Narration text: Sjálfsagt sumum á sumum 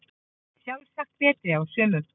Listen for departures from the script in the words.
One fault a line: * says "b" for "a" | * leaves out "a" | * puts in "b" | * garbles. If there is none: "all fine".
* says "betri" for "sumum"